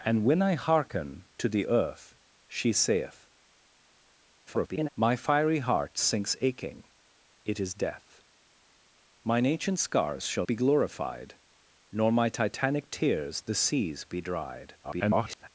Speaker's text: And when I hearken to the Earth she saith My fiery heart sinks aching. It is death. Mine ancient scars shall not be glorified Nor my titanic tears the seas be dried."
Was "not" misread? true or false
true